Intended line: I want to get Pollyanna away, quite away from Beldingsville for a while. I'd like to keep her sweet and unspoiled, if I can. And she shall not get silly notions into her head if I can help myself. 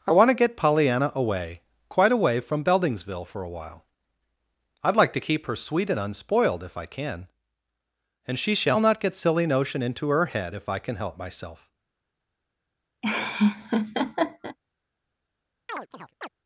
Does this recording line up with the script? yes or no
no